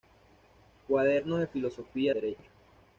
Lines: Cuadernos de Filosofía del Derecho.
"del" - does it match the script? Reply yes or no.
no